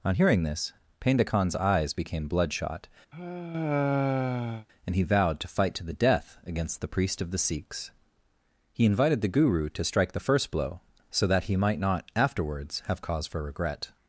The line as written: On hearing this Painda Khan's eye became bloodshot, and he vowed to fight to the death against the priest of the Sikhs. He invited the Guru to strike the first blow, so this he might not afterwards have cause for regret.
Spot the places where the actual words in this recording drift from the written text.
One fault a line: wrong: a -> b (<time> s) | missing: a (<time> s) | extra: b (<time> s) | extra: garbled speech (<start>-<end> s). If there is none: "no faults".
wrong: eye -> eyes (1.6 s)
wrong: this -> that (11.3 s)